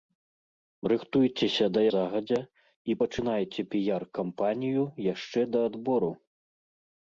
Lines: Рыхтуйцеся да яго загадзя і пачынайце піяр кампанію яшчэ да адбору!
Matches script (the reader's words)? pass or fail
fail